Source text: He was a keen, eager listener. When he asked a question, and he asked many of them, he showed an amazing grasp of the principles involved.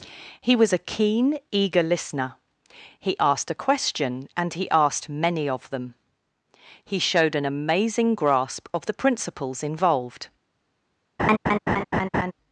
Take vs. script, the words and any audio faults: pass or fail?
fail